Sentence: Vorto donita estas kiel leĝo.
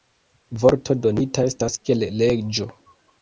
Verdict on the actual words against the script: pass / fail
pass